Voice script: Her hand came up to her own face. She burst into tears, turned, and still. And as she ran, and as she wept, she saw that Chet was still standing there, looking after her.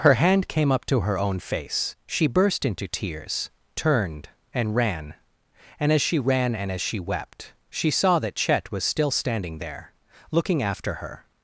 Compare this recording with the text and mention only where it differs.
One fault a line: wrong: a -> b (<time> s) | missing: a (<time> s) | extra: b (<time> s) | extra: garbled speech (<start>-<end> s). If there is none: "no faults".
wrong: still -> ran (4.8 s)